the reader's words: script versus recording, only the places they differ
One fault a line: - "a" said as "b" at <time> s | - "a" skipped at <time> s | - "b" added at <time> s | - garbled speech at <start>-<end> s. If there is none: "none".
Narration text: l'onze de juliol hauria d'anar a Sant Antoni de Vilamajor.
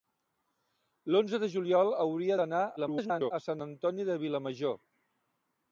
- garbled speech at 2.8-3.3 s